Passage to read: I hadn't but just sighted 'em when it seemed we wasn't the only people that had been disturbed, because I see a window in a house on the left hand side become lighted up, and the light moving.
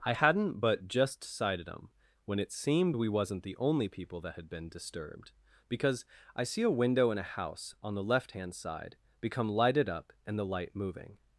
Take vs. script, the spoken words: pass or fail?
pass